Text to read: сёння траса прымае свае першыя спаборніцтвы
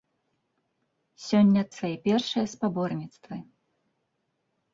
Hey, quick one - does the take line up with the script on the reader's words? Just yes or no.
no